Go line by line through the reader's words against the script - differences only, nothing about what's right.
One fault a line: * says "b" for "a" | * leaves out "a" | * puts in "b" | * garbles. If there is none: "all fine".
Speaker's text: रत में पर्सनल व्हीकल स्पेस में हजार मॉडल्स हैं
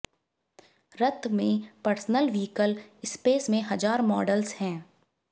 all fine